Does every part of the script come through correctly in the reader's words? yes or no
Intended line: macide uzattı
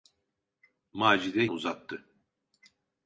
yes